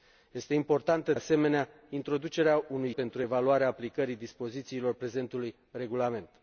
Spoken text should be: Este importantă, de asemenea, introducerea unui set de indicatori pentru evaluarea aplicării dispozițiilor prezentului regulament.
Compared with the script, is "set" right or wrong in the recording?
wrong